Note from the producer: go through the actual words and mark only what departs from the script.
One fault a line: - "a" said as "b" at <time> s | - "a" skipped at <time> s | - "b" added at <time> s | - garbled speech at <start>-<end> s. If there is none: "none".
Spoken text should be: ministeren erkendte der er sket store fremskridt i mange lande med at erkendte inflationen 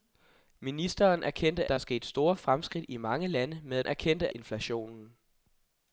none